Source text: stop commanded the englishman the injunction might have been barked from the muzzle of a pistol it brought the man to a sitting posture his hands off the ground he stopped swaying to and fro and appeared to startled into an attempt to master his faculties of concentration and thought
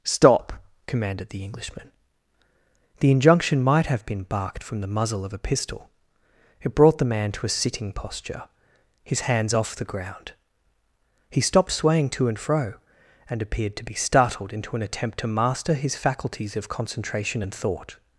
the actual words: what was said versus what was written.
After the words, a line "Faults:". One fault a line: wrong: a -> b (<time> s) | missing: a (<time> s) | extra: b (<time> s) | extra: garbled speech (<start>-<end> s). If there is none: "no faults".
stop commanded the englishman the injunction might have been barked from the muzzle of a pistol it brought the man to a sitting posture his hands off the ground he stopped swaying to and fro and appeared to be startled into an attempt to master his faculties of concentration and thought
Faults:
extra: be (13.8 s)